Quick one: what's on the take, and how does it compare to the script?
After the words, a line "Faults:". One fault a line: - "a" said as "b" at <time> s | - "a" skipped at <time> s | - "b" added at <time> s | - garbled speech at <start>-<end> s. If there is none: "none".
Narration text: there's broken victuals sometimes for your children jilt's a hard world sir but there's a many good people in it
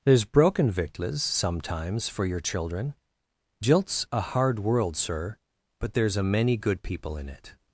there's broken victuals sometimes for your children jilt's a hard world sir but there's a many good people in it
Faults:
none